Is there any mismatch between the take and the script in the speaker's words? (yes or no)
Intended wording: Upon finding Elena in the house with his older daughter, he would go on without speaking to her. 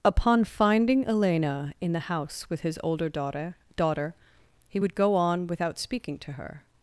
yes